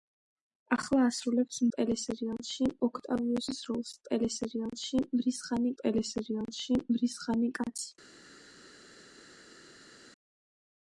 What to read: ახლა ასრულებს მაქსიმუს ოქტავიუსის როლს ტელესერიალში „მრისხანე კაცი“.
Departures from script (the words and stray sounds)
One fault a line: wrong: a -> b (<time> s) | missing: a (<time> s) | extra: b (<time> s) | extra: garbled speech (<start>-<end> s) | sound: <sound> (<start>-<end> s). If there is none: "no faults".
wrong: მაქსიმუს -> ტელესერიალში (1.8 s)
extra: ტელესერიალში მრისხანე (5.8 s)